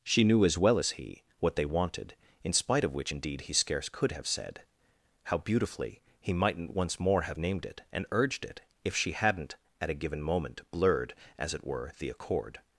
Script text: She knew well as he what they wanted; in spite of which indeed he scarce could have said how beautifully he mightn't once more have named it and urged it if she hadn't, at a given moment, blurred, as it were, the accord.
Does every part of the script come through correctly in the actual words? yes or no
no